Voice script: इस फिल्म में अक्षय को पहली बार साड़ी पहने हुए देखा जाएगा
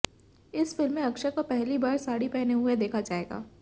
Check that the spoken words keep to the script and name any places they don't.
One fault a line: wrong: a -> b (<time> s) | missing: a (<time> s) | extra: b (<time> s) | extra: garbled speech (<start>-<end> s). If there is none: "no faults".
no faults